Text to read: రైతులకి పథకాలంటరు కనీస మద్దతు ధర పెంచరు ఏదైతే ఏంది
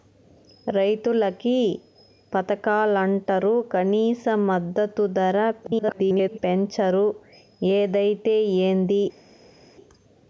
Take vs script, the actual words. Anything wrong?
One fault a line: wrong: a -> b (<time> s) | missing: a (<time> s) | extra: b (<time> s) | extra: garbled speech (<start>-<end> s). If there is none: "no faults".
extra: garbled speech (5.6-6.4 s)